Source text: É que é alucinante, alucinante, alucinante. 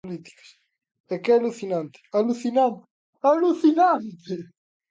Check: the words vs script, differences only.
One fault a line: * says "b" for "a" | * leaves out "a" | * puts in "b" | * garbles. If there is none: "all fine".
all fine